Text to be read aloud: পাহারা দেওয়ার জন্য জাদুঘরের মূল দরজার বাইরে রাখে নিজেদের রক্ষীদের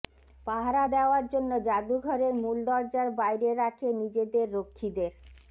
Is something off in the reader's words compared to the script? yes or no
no